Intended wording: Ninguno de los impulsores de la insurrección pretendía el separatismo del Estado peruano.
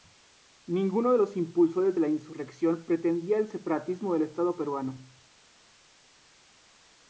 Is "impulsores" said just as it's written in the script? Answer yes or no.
yes